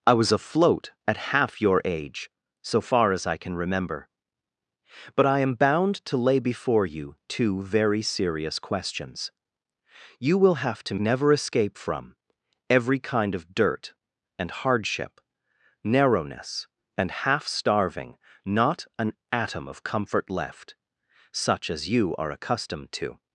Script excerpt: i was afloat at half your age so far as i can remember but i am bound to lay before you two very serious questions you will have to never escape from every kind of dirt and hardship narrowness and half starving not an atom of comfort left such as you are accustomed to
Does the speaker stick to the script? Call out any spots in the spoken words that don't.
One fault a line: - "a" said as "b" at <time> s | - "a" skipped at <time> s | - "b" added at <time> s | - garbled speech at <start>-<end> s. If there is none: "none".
none